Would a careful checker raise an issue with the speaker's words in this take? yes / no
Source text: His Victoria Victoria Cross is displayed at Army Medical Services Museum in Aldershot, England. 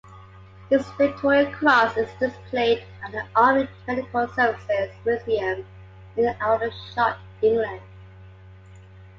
yes